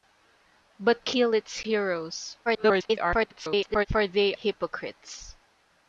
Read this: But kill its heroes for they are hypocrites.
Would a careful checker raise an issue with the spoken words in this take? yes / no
yes